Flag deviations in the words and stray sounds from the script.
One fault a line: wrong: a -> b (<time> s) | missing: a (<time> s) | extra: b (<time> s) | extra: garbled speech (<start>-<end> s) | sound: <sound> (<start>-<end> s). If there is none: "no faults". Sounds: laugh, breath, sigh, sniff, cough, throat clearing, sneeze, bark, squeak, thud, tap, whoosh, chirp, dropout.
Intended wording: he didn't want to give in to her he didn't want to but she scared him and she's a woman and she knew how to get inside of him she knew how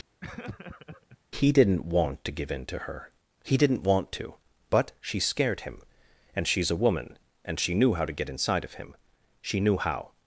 sound: laugh (0.2-1.2 s)